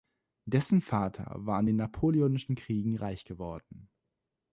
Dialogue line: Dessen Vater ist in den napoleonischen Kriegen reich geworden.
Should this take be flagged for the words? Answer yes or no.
yes